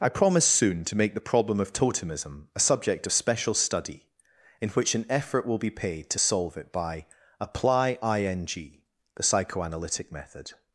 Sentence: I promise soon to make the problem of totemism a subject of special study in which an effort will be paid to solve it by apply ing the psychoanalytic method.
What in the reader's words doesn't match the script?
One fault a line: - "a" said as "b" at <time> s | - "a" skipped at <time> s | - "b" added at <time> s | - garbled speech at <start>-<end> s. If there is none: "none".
none